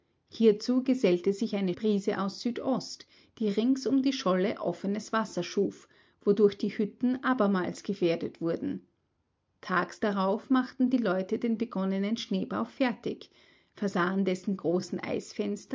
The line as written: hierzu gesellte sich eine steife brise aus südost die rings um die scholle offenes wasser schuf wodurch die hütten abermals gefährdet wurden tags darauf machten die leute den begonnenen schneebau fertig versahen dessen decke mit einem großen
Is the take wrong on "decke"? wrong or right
wrong